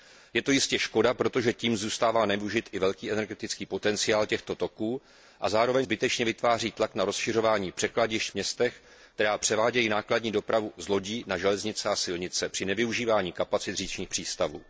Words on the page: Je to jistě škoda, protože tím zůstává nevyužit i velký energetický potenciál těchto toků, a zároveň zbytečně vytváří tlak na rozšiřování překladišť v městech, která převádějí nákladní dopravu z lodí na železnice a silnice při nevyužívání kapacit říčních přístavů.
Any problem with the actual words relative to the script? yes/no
no